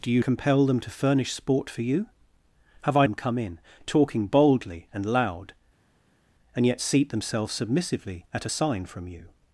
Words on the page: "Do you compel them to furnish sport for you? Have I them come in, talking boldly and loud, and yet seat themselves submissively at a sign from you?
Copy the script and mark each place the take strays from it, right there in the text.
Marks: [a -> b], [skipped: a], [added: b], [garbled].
"Do you compel them to furnish sport for you? Have I them come in, talking boldly and loud, and yet seat themselves submissively at a sign from you?